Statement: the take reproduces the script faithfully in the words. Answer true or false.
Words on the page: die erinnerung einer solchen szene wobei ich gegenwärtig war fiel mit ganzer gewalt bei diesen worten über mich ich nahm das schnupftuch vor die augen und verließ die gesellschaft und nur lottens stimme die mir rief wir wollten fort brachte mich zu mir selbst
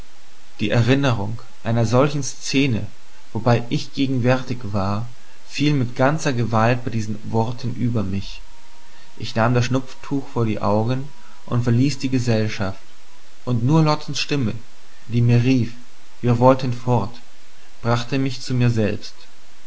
true